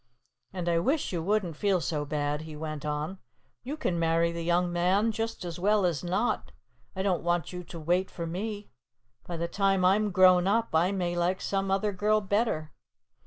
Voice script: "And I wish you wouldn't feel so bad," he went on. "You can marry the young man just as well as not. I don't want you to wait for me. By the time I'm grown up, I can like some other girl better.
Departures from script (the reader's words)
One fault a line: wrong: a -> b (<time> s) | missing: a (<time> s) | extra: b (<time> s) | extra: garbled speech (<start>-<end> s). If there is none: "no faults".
wrong: can -> may (10.9 s)